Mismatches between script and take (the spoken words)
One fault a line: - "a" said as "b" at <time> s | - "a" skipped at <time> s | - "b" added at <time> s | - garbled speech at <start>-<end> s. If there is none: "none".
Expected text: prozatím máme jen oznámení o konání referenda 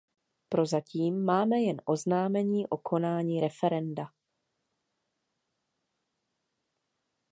none